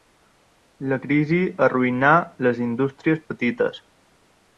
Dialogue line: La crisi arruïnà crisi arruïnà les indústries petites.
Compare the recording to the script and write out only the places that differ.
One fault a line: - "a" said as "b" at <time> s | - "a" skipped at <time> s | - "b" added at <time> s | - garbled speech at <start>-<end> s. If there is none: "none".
- "crisi arruïnà" skipped at 2.1 s